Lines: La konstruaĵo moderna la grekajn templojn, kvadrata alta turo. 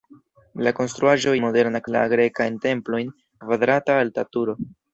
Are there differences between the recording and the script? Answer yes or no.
no